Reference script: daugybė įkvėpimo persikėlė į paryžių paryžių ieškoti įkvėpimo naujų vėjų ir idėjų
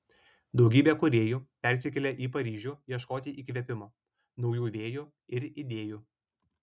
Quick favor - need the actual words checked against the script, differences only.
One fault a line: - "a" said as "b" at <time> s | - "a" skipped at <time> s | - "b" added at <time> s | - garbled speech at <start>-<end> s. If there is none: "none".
- "įkvėpimo" said as "kūrėjų" at 1.0 s
- "paryžių" skipped at 2.7 s